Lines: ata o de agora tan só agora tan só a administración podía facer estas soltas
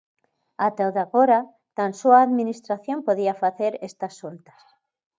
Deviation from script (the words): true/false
true